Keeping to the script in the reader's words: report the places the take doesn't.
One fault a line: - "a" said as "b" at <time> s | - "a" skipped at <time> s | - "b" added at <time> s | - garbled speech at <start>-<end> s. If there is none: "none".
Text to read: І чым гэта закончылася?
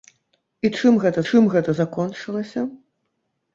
- "чым гэта" added at 1.3 s